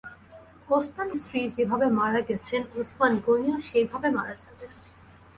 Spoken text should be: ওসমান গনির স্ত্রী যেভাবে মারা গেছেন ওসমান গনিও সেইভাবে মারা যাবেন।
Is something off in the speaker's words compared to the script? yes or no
yes